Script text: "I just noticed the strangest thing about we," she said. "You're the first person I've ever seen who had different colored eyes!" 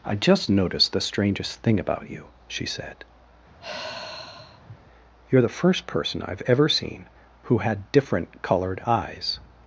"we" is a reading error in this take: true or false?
true